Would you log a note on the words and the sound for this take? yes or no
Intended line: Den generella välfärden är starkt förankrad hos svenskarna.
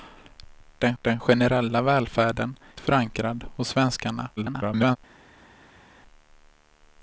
yes